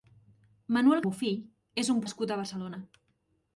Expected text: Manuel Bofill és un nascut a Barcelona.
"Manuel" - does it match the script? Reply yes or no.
yes